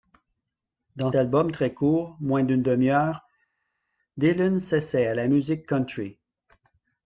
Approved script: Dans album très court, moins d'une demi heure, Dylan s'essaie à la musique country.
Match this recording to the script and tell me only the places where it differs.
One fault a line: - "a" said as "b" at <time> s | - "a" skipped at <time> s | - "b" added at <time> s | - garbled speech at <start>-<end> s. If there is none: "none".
none